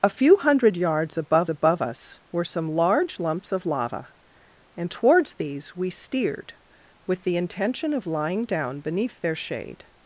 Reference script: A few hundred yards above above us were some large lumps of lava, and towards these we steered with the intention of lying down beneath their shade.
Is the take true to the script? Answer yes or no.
yes